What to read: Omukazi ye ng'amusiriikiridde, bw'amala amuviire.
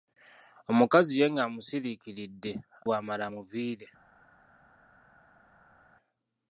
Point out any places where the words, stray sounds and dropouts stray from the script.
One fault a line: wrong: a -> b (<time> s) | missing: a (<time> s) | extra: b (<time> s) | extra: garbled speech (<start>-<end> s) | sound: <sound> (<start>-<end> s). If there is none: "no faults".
no faults